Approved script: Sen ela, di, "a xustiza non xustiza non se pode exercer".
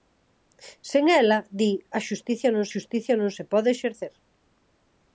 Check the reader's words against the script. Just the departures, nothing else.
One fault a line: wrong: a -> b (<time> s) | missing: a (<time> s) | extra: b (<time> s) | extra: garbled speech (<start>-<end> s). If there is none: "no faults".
no faults